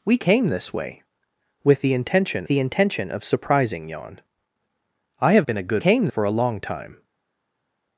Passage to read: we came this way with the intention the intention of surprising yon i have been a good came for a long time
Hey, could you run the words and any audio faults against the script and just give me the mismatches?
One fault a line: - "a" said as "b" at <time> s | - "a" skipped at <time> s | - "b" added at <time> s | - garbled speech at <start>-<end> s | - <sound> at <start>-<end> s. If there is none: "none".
none